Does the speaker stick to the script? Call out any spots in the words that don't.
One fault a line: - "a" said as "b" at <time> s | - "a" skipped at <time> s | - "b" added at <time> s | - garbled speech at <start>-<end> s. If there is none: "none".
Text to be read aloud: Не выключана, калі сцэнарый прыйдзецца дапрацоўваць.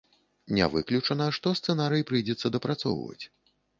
- "калі" said as "што" at 1.4 s